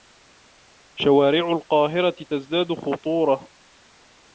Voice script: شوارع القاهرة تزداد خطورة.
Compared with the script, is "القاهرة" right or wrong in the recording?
right